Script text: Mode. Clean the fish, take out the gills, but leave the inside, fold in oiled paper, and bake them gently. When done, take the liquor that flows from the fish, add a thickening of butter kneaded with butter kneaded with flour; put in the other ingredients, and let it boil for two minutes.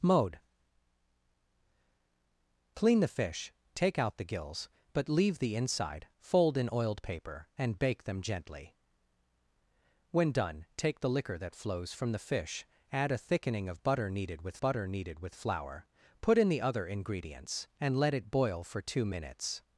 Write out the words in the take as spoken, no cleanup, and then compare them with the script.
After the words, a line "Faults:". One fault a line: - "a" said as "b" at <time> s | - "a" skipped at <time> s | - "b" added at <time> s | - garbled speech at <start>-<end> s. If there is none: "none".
Mode. Clean the fish, take out the gills, but leave the inside, fold in oiled paper, and bake them gently. When done, take the liquor that flows from the fish, add a thickening of butter kneaded with butter kneaded with flour; put in the other ingredients, and let it boil for two minutes.
Faults:
none